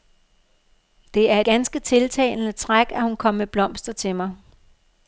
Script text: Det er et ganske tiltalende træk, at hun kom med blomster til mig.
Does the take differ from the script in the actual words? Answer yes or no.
yes